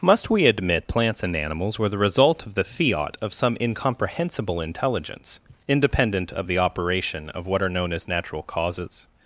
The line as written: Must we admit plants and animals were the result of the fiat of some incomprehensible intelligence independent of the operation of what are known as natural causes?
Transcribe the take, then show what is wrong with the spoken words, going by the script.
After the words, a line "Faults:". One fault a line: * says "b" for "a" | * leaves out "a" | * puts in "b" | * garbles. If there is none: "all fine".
Must we admit plants and animals were the result of the fiat of some incomprehensible intelligence independent of the operation of what are known as natural causes?
Faults:
all fine